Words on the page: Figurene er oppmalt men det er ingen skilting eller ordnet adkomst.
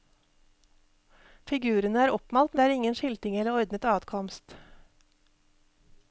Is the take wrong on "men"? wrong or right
wrong